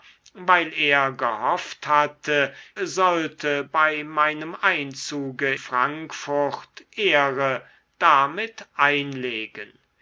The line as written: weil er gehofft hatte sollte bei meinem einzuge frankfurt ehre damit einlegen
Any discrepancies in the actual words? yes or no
no